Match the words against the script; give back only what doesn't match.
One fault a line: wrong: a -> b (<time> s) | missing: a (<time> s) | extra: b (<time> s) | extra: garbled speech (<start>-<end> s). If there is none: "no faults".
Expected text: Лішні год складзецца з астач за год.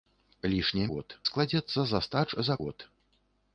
no faults